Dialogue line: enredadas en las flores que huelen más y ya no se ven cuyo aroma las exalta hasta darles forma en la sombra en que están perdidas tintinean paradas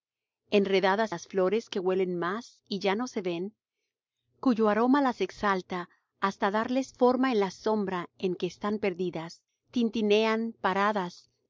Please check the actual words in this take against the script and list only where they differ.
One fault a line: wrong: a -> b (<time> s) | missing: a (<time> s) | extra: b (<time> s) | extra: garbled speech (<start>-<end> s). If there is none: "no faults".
missing: en (1.1 s)